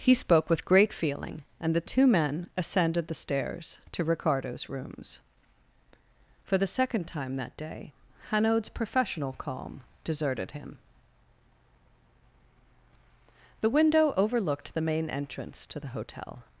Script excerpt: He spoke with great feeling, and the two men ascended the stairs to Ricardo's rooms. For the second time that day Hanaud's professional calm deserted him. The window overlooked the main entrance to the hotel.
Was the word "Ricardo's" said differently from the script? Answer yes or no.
no